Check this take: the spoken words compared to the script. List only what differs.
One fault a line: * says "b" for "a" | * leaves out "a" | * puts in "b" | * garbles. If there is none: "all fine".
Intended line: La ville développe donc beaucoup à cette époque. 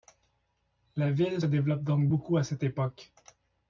all fine